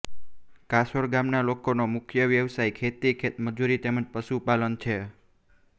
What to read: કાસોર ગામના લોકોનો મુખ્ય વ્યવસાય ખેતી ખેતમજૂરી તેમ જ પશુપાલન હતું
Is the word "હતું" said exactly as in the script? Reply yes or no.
no